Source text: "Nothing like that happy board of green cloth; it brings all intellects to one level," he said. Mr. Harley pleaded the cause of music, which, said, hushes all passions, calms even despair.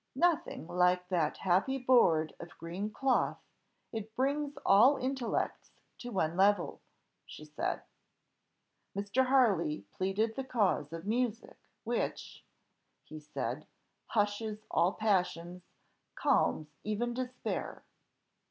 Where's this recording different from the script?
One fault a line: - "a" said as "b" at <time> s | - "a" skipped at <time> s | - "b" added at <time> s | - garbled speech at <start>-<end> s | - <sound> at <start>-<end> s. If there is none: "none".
- "he" said as "she" at 7.2 s
- "he" added at 13.0 s